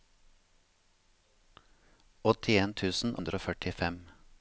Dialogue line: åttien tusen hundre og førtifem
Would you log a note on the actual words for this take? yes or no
no